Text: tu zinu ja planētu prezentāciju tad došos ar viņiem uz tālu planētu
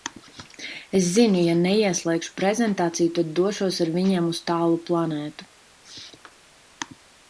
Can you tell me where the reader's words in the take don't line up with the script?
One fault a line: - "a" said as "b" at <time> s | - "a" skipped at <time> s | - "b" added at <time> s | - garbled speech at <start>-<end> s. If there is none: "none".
- "tu" said as "es" at 1.0 s
- "planētu" said as "neieslēgšu" at 1.6 s